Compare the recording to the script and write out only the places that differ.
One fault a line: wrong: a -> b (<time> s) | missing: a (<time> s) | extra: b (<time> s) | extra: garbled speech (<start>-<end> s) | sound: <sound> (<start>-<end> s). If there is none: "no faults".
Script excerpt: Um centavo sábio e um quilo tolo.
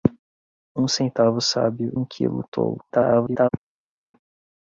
missing: e (1.9 s)
extra: garbled speech (2.9-3.5 s)